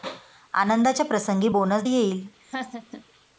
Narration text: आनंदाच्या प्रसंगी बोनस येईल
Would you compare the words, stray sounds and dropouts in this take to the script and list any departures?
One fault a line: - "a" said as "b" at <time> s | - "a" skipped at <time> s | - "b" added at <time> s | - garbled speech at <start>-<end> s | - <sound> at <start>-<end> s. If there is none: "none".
- laugh at 2.4-3.0 s